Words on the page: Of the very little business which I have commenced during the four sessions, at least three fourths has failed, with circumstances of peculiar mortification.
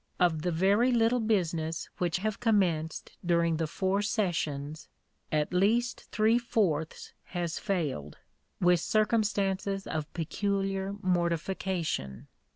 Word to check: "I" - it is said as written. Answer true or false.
false